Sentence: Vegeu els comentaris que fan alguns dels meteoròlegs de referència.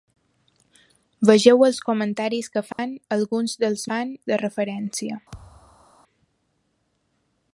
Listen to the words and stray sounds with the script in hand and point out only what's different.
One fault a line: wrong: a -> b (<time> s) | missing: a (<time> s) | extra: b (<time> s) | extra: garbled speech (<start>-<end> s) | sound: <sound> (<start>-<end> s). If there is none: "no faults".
sound: dropout (2.7-2.8 s)
wrong: meteoròlegs -> fan (3.9 s)
sound: thud (5.3-5.9 s)